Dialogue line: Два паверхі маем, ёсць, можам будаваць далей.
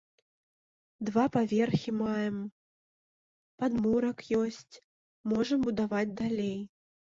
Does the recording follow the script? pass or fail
fail